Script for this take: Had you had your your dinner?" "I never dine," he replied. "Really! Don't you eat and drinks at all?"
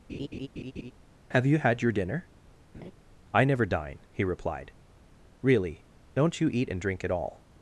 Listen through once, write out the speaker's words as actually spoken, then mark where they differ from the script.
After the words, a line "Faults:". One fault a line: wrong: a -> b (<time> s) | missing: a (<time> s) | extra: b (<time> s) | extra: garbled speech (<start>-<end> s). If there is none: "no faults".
Have you had your dinner?" "I never dine," he replied. "Really! Don't you eat and drink at all?"
Faults:
wrong: Had -> Have (1.3 s)
missing: your (1.9 s)
wrong: drinks -> drink (6.8 s)